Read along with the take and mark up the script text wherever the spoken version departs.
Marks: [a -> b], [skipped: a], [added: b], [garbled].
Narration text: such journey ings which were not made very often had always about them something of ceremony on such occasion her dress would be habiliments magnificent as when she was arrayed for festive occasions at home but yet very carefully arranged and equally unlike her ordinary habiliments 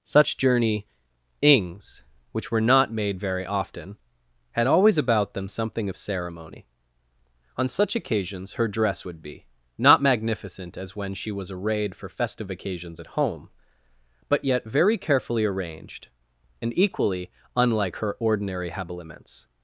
such journey ings which were not made very often had always about them something of ceremony on such [occasion -> occasions] her dress would be [habiliments -> not] magnificent as when she was arrayed for festive occasions at home but yet very carefully arranged and equally unlike her ordinary habiliments